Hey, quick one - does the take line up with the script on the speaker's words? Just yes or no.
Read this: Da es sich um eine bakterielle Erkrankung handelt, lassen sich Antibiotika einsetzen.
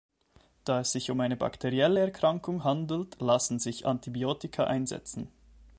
yes